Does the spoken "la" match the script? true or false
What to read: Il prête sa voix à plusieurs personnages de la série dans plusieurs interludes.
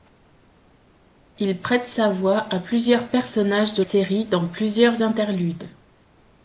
false